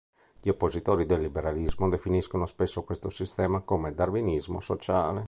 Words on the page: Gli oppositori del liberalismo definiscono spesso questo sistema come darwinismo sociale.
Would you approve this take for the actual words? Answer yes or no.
yes